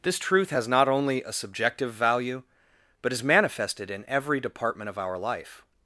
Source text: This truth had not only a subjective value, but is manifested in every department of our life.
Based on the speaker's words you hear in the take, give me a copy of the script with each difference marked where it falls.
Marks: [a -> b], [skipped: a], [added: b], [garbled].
This truth [had -> has] not only a subjective value, but is manifested in every department of our life.